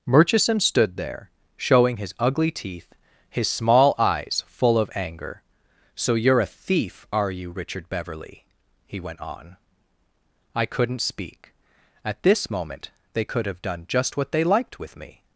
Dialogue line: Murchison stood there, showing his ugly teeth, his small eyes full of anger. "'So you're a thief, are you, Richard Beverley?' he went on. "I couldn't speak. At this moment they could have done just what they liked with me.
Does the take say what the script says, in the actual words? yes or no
yes